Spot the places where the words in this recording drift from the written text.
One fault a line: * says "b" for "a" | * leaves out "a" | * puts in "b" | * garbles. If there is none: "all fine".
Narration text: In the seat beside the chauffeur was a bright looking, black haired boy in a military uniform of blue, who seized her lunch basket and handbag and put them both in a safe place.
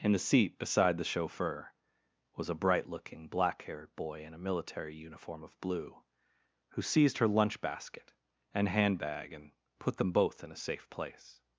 all fine